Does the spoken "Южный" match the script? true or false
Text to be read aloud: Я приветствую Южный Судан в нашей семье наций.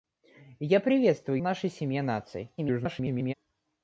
false